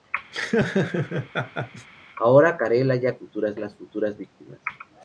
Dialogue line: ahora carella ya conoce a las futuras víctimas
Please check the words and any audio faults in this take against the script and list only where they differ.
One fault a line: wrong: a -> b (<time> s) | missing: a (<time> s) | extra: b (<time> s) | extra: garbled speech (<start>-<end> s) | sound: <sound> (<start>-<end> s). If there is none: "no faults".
sound: laugh (0.3-1.9 s)
wrong: conoce -> futuras (3.2 s)